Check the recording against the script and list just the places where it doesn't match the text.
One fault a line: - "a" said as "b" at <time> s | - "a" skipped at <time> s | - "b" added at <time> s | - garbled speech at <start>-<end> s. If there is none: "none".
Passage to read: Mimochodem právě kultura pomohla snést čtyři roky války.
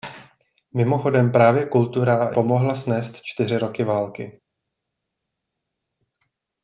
none